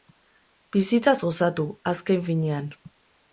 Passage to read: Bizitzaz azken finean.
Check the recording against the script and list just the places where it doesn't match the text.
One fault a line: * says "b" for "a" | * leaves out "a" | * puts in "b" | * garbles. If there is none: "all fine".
* puts in "gozatu"